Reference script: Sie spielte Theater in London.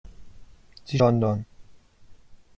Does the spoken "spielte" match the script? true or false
false